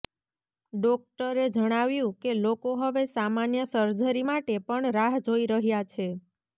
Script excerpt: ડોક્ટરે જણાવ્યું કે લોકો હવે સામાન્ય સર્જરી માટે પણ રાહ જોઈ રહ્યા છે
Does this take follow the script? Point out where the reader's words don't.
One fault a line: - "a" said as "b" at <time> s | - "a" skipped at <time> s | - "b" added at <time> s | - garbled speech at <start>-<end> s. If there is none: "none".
none